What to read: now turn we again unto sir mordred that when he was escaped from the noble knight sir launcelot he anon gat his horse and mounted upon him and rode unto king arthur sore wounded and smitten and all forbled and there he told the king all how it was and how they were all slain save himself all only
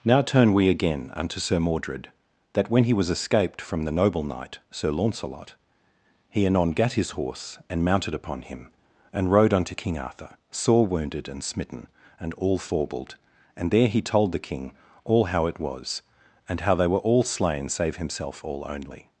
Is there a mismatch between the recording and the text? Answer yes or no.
no